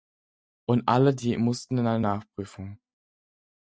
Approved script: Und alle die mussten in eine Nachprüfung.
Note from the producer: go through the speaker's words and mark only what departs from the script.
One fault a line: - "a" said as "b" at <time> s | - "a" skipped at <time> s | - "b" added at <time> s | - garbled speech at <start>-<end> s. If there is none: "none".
none